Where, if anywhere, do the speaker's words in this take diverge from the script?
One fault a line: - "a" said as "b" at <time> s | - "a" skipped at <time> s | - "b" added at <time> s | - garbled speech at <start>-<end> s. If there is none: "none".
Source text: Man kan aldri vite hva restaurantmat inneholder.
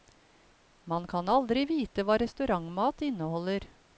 none